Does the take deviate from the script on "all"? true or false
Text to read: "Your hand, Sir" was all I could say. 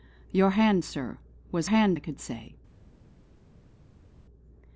true